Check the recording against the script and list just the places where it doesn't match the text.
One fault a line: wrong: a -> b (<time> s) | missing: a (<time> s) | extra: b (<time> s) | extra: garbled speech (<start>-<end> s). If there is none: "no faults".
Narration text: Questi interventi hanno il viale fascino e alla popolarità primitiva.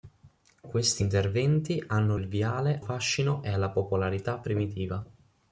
no faults